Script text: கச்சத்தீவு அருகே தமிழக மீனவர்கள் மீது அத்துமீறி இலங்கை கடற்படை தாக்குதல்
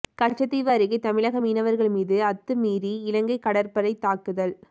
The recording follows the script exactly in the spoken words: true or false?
true